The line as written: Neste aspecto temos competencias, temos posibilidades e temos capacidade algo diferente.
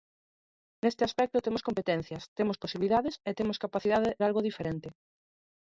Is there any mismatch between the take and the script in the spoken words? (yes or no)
no